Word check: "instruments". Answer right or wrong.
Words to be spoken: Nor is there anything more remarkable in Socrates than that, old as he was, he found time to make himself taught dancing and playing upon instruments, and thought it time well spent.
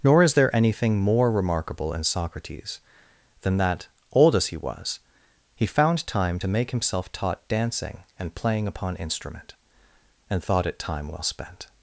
wrong